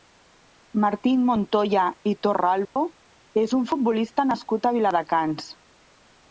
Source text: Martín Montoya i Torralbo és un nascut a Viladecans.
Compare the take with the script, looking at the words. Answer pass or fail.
fail